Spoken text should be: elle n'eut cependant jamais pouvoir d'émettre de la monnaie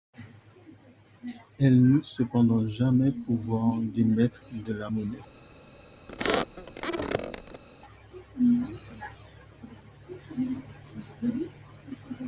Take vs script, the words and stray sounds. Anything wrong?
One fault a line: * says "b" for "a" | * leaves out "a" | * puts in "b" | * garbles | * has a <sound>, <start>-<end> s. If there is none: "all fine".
* has a squeak, 6.1-7.6 s